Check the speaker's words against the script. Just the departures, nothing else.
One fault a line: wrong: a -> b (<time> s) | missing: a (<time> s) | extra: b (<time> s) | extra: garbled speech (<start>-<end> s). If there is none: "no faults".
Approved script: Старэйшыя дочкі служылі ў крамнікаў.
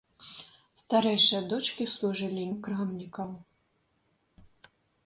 no faults